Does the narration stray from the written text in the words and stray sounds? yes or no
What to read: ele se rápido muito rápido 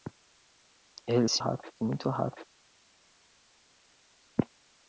no